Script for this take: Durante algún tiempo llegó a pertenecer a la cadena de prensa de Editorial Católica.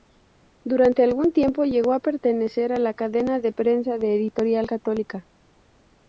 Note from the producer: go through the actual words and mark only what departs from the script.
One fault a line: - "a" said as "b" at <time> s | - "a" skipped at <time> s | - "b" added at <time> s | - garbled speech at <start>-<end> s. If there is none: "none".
none